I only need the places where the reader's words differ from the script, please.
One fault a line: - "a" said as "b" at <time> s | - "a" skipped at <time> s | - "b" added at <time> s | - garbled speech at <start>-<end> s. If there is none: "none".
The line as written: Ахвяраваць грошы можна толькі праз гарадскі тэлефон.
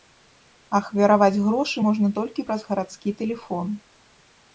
none